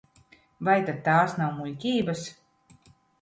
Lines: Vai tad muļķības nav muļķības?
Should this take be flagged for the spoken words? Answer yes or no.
yes